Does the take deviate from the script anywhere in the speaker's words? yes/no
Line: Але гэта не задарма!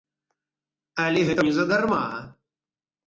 no